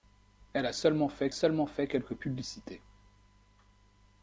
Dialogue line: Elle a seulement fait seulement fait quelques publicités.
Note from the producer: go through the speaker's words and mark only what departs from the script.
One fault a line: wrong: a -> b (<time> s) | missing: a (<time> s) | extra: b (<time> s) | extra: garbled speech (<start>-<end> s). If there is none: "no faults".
no faults